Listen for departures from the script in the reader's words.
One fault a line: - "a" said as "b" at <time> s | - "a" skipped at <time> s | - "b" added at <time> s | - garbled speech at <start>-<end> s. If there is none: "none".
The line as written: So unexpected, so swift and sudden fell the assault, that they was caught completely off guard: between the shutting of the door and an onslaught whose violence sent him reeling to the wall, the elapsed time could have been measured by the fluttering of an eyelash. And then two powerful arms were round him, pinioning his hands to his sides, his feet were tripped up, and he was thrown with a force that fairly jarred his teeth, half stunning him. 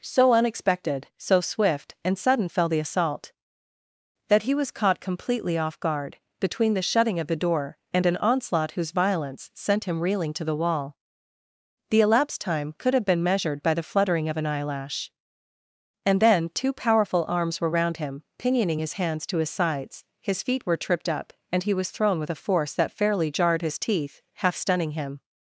- "they" said as "he" at 4.4 s